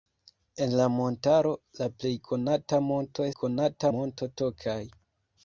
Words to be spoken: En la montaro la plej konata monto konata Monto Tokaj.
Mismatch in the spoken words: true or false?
false